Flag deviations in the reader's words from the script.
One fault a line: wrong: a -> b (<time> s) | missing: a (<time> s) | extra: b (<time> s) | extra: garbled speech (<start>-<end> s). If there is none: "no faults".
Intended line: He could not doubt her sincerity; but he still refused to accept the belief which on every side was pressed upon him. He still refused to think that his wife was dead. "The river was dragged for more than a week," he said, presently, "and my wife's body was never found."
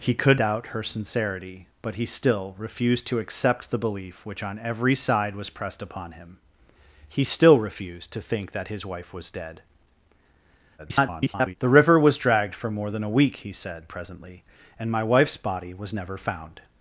missing: not (0.4 s)
extra: garbled speech (10.8-11.6 s)